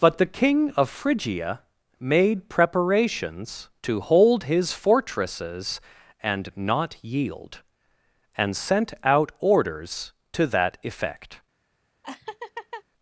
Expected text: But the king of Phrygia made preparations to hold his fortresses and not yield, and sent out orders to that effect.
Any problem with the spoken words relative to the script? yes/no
no